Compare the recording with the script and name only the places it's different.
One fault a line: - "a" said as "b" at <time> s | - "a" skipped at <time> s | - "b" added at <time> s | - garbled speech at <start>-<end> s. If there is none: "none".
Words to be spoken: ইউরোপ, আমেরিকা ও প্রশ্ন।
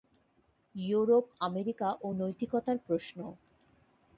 - "নৈতিকতার" added at 2.2 s